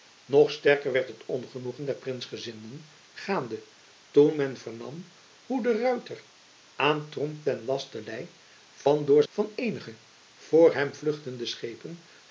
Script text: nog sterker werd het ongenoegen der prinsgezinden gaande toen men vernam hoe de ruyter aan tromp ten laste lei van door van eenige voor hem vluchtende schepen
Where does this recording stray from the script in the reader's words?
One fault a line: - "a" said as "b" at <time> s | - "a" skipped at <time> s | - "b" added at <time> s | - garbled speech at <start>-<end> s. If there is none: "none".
none